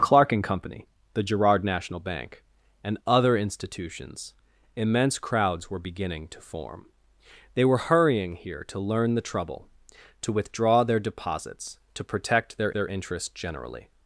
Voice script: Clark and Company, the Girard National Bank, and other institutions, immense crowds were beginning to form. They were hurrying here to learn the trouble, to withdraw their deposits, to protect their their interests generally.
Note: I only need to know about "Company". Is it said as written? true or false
true